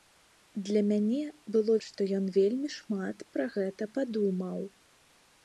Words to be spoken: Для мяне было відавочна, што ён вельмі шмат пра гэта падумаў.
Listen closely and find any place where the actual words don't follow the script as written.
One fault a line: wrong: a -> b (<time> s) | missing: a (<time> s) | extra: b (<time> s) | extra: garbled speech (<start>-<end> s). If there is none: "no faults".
missing: відавочна (1.8 s)